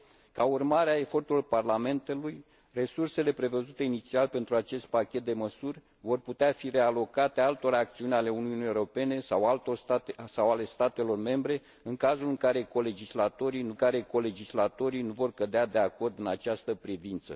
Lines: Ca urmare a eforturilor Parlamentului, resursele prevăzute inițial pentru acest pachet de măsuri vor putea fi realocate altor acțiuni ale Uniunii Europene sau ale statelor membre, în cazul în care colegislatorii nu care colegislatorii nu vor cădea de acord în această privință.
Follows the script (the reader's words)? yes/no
yes